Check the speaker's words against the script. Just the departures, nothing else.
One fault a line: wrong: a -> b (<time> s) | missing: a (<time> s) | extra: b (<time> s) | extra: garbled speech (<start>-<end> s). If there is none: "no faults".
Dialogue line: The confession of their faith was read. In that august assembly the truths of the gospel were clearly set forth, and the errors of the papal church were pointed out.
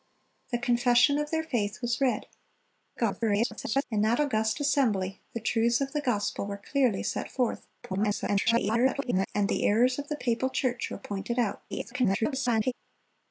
extra: garbled speech (3.0-3.8 s)
extra: garbled speech (7.8-9.3 s)
extra: garbled speech (11.7-12.7 s)